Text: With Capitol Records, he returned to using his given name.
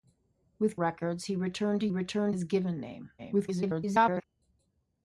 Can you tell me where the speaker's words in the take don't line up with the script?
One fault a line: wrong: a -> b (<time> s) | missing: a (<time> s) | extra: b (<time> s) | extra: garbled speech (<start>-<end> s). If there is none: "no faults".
missing: Capitol (0.8 s)
wrong: using -> returned (1.9 s)
extra: garbled speech (3.2-4.2 s)